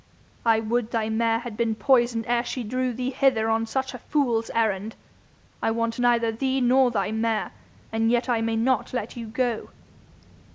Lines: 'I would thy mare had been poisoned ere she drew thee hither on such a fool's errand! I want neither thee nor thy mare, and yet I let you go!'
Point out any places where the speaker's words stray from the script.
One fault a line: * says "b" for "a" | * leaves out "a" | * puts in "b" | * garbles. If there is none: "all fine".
* puts in "may not"